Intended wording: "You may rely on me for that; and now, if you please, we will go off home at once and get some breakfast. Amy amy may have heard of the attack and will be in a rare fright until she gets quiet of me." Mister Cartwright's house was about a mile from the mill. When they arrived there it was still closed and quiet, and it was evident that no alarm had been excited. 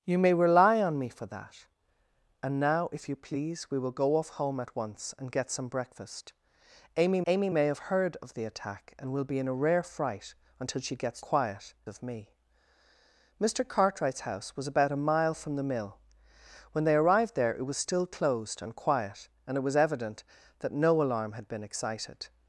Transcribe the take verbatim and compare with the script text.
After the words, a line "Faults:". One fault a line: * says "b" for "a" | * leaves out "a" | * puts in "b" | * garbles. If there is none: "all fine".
"You may rely on me for that; and now, if you please, we will go off home at once and get some breakfast. Amy amy may have heard of the attack and will be in a rare fright until she gets quiet of me." Mister Cartwright's house was about a mile from the mill. When they arrived there it was still closed and quiet, and it was evident that no alarm had been excited.
Faults:
all fine